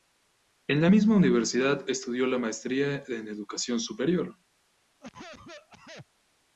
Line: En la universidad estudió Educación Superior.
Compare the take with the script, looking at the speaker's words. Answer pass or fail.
fail